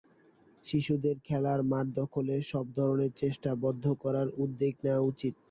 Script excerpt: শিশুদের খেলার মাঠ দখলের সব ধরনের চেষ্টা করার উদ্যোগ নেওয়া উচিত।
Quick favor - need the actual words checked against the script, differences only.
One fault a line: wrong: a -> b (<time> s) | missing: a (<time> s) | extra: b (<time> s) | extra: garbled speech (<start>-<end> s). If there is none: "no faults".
extra: বন্ধ (3.6 s)